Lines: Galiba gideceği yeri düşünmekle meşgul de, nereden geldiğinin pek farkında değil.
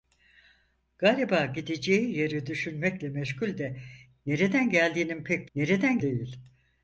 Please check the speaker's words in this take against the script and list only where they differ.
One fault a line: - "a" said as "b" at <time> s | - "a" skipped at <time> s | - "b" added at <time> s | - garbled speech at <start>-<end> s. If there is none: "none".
- "farkında" said as "nereden" at 5.5 s